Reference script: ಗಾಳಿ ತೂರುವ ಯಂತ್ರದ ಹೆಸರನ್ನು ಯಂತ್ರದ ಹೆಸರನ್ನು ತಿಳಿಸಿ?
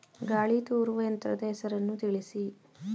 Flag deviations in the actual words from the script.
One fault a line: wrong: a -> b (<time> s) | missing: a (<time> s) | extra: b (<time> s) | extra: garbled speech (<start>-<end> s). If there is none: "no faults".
missing: ಯಂತ್ರದ ಹೆಸರನ್ನು (2.0 s)